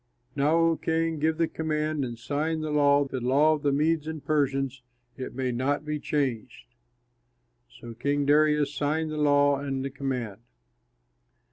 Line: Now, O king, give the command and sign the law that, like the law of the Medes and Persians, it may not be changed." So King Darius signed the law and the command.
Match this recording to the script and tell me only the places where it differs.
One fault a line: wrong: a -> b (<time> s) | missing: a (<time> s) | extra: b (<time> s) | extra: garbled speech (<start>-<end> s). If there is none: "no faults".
missing: that like (3.0 s)